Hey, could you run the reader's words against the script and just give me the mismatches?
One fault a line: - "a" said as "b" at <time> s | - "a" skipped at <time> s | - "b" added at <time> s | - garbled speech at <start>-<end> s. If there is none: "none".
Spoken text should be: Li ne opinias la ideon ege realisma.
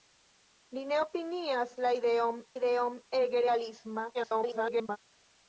- "ideon" added at 2.6 s
- garbled speech at 4.1-5.0 s